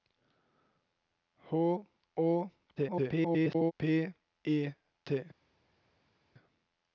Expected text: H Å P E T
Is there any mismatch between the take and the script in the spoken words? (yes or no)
yes